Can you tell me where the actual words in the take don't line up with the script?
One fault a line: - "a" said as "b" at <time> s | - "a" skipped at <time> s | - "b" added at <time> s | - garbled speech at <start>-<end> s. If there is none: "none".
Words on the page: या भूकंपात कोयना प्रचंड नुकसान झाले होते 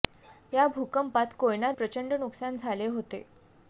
none